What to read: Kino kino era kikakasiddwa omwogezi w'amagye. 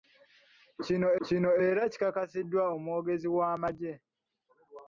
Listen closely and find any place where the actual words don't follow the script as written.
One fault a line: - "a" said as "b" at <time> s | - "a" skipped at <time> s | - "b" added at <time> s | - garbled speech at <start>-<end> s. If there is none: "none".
none